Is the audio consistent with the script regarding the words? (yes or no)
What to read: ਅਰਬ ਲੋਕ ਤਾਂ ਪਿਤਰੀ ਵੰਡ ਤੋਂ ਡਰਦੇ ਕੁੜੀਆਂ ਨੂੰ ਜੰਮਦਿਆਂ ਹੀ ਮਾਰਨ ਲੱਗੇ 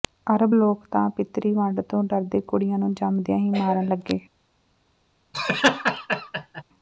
yes